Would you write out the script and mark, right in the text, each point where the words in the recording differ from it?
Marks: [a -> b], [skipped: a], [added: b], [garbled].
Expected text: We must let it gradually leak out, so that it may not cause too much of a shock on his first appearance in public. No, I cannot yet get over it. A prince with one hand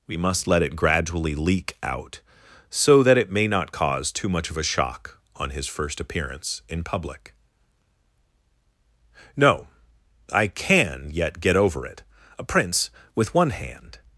We must let it gradually leak out, so that it may not cause too much of a shock on his first appearance in public. No, I [cannot -> can] yet get over it. A prince with one hand